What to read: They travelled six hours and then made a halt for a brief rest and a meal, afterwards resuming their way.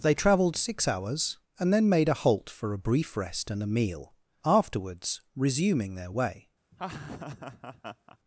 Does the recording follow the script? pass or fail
pass